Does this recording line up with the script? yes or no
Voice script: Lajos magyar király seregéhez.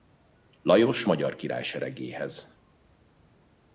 yes